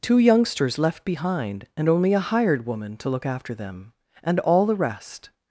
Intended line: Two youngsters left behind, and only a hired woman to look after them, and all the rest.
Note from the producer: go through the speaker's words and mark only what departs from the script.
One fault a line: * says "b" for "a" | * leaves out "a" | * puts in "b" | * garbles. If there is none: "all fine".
all fine